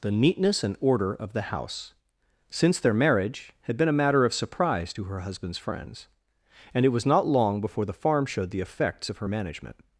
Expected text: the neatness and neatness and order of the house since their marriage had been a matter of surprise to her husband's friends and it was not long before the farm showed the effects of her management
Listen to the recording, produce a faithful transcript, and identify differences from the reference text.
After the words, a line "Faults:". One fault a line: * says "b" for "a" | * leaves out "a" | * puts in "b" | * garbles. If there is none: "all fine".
the neatness and order of the house since their marriage had been a matter of surprise to her husband's friends and it was not long before the farm showed the effects of her management
Faults:
* leaves out "neatness and"